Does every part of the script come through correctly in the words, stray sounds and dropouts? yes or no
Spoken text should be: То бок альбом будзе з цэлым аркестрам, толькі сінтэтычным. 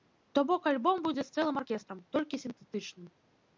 yes